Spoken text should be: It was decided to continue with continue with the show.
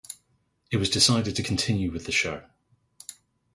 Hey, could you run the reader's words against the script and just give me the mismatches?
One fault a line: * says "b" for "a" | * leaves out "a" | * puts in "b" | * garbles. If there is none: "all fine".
* leaves out "continue with"